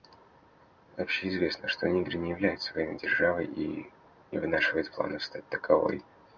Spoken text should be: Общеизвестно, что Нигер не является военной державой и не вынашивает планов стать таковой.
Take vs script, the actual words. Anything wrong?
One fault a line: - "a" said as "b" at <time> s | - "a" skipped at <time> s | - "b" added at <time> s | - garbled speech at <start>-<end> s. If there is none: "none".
none